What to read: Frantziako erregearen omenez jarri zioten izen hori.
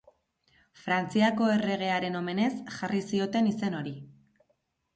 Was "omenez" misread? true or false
false